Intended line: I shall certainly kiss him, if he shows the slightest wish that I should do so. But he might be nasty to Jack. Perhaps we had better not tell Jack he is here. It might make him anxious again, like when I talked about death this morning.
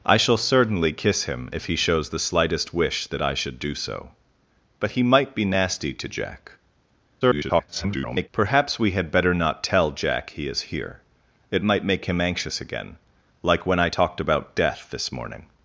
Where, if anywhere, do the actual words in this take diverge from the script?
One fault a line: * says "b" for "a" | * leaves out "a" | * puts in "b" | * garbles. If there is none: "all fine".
* garbles